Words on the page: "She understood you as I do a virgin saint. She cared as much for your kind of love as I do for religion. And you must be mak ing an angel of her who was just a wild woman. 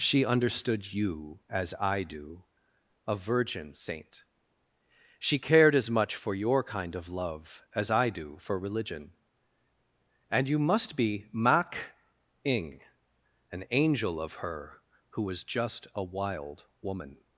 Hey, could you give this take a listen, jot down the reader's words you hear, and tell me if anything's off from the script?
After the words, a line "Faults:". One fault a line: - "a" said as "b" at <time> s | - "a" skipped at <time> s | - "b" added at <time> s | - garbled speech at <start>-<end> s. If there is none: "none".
"She understood you as I do a virgin saint. She cared as much for your kind of love as I do for religion. And you must be mak ing an angel of her who was just a wild woman.
Faults:
none